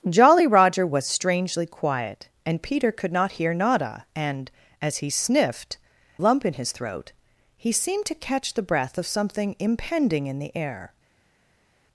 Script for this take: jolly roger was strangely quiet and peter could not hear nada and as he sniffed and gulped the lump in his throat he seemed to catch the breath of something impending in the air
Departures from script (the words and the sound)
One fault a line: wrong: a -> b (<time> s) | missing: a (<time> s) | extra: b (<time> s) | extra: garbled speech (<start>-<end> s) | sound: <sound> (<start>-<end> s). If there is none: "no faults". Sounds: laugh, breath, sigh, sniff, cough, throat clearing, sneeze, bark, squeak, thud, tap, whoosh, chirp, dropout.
missing: and gulped the (5.8 s)